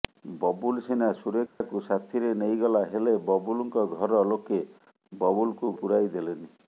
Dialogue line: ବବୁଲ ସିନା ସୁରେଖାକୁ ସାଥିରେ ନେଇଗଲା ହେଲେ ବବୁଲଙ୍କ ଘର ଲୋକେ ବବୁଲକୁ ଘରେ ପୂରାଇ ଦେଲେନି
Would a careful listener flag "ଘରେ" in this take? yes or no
yes